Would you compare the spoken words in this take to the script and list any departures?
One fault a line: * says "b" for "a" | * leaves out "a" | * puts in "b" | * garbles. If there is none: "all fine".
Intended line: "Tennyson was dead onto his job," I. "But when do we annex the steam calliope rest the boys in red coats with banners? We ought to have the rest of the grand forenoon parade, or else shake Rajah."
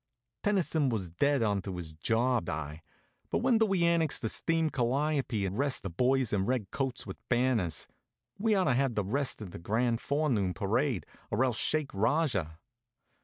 all fine